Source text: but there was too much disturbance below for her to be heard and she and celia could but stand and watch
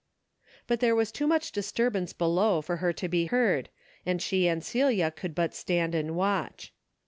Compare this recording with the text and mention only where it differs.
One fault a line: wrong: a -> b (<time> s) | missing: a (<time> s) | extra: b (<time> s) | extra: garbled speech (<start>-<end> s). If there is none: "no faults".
no faults